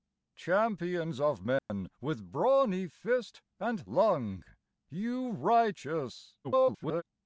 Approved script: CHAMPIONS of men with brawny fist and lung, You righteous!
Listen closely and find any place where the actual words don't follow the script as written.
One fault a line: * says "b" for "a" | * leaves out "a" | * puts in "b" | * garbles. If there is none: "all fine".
* garbles